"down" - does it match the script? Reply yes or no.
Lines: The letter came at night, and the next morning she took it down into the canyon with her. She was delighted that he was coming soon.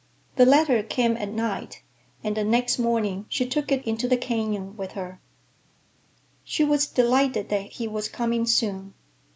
no